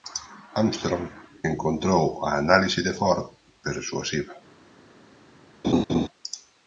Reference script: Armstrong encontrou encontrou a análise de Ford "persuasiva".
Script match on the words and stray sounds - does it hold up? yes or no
no